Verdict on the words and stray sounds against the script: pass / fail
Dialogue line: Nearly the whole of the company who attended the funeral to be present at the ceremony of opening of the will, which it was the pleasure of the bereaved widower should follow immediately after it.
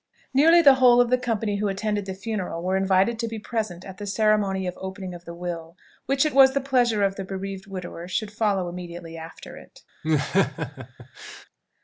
fail